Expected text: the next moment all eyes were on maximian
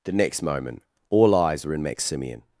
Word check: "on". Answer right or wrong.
wrong